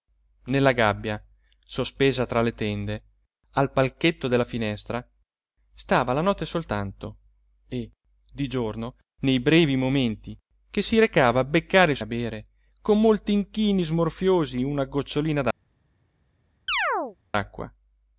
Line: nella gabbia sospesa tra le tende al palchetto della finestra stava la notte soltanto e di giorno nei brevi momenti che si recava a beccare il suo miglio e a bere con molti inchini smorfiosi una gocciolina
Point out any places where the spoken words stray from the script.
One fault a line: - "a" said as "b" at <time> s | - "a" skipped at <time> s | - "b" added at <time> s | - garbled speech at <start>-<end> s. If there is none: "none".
- "suo miglio e" skipped at 12.0 s